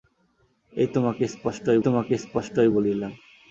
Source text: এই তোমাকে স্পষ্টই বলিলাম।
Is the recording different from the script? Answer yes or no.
yes